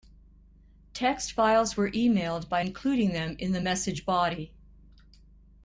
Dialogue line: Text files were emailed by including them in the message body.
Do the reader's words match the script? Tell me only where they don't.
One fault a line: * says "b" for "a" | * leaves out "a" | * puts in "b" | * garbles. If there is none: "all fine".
all fine